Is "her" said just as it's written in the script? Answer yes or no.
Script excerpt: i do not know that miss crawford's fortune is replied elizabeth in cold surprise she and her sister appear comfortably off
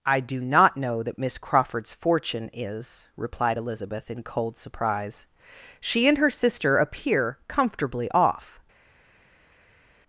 yes